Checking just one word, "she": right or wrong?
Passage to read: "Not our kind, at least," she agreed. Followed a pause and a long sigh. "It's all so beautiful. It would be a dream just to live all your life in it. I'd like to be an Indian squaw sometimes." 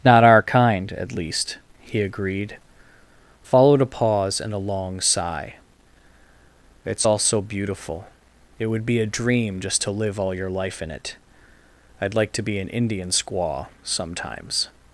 wrong